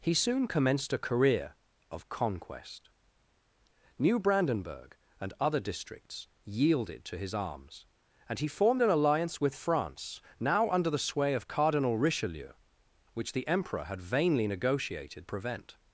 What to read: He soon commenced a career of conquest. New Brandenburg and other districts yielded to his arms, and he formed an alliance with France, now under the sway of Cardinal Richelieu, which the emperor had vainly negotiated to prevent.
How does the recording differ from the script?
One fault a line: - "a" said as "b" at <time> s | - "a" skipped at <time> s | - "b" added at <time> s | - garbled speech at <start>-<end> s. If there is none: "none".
- "to" skipped at 15.3 s